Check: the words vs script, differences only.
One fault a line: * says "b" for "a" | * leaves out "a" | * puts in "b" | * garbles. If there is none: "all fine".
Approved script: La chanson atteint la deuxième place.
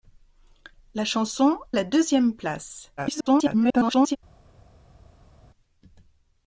* leaves out "atteint"
* garbles